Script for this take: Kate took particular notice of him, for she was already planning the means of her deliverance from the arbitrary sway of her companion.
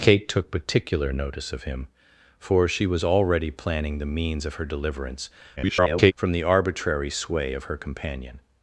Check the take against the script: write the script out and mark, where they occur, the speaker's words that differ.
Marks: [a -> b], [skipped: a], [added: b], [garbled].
Kate took particular notice of him, for she was already planning the means of her deliverance [garbled] from the arbitrary sway of her companion.